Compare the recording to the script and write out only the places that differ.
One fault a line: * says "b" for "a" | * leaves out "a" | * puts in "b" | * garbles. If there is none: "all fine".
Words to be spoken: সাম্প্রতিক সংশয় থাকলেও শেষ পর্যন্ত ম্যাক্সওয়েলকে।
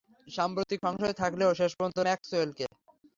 all fine